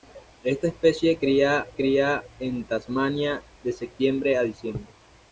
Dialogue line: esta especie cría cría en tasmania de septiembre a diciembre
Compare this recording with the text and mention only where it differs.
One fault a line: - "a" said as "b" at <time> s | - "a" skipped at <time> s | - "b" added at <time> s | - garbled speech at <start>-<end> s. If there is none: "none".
none